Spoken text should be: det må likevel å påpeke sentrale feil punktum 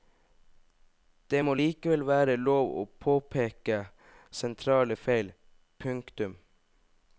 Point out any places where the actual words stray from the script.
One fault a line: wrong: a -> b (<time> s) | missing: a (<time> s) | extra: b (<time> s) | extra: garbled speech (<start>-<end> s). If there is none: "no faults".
extra: være lov (2.1 s)